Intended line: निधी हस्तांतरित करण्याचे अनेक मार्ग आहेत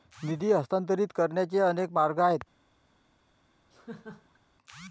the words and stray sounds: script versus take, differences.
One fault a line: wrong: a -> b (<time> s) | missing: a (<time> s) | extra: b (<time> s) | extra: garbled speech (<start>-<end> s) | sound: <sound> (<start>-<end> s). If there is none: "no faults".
sound: laugh (3.7-4.4 s)